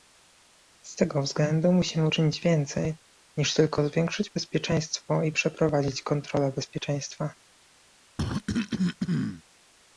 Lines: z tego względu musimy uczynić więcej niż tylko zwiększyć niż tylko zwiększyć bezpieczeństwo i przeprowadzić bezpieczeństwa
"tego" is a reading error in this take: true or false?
false